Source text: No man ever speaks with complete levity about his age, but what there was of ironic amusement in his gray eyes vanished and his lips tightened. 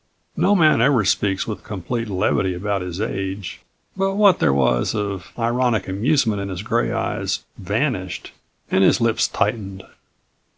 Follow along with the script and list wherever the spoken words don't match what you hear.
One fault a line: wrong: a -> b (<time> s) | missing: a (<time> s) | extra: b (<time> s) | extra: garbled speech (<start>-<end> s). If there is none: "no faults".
no faults